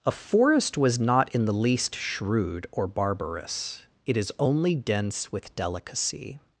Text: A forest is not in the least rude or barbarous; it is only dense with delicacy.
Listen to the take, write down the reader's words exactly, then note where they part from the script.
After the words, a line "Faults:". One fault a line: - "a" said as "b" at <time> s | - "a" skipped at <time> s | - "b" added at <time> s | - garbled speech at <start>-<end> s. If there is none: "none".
A forest was not in the least shrewd or barbarous; it is only dense with delicacy.
Faults:
- "is" said as "was" at 0.8 s
- "rude" said as "shrewd" at 1.9 s